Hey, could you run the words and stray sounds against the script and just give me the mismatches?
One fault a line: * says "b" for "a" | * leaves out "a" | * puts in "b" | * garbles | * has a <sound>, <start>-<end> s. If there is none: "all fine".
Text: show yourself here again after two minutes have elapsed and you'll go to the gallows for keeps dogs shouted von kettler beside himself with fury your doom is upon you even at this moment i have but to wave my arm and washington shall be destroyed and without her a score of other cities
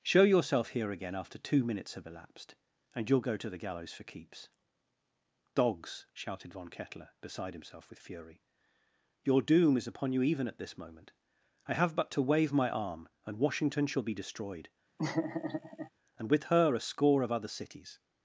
* has a laugh, 15.0-15.9 s
* says "with" for "without"